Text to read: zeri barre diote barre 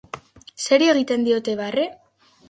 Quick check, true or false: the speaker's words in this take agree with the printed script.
false